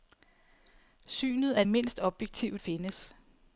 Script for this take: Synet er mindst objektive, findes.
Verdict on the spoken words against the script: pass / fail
pass